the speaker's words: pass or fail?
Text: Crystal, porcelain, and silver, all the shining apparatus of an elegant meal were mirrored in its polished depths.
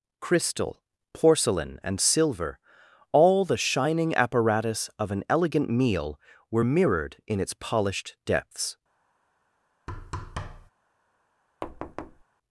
pass